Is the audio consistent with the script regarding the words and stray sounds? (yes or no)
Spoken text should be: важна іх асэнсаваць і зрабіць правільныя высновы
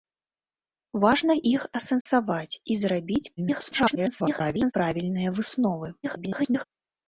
no